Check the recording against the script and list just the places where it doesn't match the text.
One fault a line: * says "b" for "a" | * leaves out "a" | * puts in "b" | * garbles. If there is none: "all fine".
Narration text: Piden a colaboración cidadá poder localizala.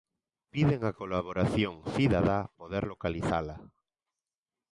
all fine